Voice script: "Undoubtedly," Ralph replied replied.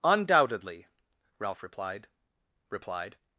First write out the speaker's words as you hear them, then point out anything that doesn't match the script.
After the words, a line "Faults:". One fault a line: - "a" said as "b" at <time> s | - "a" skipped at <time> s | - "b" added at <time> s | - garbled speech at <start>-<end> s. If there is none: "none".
"Undoubtedly," Ralph replied replied.
Faults:
none